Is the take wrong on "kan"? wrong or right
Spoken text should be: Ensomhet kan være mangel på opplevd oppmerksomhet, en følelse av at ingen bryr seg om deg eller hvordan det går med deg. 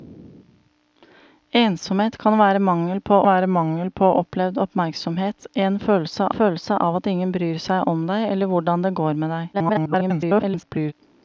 right